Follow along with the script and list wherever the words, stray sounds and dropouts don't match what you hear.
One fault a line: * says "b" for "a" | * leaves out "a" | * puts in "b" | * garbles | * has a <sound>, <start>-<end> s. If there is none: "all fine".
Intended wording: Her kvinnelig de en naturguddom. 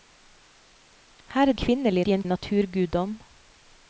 all fine